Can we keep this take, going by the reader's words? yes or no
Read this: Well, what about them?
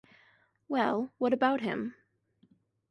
no